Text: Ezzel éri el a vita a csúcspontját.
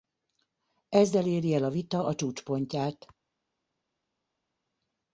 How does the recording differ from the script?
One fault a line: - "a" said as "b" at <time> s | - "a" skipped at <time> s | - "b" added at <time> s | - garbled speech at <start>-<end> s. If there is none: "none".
none